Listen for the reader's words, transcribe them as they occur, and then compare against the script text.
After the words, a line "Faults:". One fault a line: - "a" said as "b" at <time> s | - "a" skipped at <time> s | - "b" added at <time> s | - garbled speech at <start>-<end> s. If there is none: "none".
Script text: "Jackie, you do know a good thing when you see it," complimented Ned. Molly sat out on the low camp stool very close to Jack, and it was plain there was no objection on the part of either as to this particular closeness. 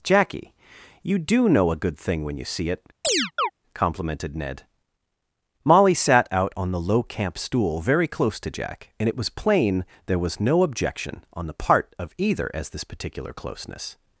"Jackie, you do know a good thing when you see it," complimented Ned. Molly sat out on the low camp stool very close to Jack, and it was plain there was no objection on the part of either as this particular closeness.
Faults:
- "to" skipped at 12.7 s